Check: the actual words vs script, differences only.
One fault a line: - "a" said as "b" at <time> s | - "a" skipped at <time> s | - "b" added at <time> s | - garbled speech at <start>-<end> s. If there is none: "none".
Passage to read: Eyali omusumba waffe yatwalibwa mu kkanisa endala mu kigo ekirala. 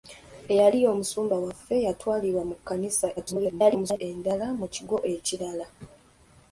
- garbled speech at 3.2-4.0 s